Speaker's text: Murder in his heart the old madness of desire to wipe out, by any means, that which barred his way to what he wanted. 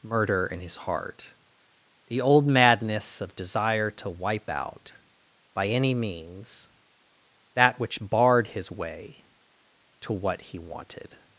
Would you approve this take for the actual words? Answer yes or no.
yes